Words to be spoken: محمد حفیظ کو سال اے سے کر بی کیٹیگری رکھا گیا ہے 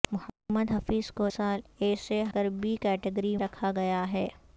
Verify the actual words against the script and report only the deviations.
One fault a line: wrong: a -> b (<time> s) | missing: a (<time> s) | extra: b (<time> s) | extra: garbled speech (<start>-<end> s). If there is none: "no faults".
no faults